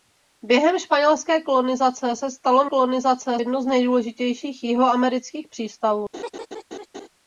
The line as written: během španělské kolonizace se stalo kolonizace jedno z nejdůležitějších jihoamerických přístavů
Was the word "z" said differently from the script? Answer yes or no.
no